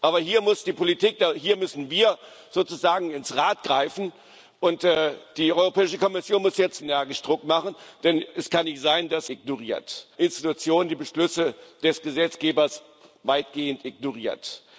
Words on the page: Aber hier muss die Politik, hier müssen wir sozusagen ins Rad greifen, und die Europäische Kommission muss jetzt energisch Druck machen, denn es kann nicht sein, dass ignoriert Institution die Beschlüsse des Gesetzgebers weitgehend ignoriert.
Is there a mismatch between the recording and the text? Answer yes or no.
no